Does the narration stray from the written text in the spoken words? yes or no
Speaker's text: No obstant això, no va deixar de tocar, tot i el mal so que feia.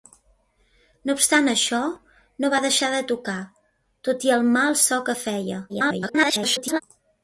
yes